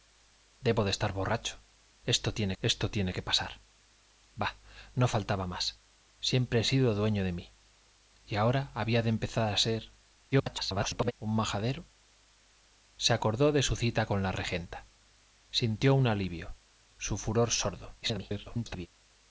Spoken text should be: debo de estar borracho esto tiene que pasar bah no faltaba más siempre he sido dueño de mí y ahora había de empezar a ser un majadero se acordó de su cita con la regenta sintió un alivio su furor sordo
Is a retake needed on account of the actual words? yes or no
yes